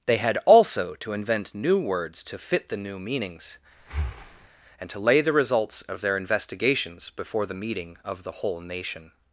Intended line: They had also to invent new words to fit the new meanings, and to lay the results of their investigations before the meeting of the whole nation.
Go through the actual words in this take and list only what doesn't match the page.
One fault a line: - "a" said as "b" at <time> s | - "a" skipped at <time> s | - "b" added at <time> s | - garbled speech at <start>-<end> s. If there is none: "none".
none